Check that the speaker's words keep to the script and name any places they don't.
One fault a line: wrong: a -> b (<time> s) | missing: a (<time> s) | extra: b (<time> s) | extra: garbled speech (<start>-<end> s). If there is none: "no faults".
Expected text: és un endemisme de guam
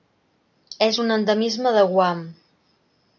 no faults